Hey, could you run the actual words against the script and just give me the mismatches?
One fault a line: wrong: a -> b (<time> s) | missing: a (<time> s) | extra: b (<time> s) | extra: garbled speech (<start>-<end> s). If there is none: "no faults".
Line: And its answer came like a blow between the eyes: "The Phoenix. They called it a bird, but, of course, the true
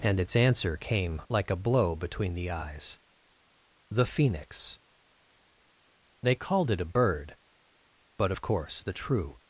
no faults